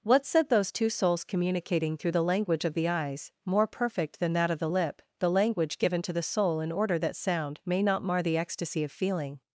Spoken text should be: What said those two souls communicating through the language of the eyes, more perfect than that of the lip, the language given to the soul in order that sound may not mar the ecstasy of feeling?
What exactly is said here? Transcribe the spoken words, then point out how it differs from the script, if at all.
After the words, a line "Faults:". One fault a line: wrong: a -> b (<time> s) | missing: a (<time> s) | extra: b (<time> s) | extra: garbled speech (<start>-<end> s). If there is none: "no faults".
What said those two souls communicating through the language of the eyes, more perfect than that of the lip, the language given to the soul in order that sound may not mar the ecstasy of feeling?
Faults:
no faults